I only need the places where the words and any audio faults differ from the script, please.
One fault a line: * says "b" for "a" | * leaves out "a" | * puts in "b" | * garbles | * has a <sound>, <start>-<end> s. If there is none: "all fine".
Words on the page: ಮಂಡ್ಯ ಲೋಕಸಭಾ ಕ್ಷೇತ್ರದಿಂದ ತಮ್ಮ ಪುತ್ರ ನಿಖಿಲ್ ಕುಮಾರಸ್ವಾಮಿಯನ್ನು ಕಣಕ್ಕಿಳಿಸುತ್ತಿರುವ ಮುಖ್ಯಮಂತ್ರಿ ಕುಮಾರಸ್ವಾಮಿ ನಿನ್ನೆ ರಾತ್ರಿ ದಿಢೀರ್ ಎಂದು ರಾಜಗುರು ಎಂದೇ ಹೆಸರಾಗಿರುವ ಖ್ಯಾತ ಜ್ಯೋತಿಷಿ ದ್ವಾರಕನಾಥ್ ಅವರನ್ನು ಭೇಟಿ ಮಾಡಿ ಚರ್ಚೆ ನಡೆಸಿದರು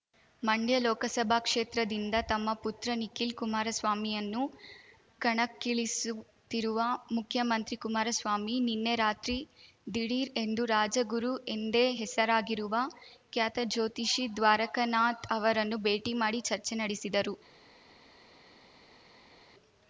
all fine